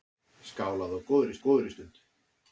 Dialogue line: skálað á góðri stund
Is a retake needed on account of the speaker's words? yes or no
yes